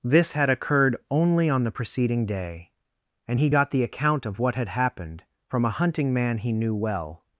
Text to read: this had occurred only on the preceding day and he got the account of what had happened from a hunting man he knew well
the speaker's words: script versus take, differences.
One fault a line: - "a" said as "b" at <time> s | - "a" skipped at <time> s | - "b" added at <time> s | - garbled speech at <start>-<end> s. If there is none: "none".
none